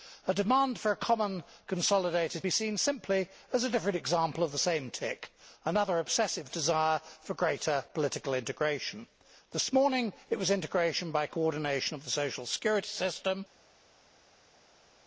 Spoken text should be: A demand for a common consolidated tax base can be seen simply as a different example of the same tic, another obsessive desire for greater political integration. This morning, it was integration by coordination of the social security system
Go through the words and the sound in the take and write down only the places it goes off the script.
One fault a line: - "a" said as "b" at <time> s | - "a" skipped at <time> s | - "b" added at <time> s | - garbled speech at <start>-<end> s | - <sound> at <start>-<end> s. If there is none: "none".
- "tax base can" skipped at 2.4 s